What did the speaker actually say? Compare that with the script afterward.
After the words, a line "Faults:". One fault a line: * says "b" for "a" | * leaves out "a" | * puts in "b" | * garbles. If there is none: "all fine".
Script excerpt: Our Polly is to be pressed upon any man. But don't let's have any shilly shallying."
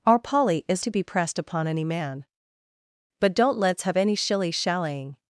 Our Polly is to be pressed upon any man. But don't let's have any shilly shallying."
Faults:
all fine